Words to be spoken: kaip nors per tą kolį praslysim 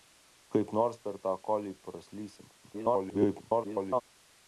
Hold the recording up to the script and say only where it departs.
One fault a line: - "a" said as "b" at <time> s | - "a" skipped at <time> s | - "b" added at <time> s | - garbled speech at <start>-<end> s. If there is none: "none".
- garbled speech at 2.6-4.0 s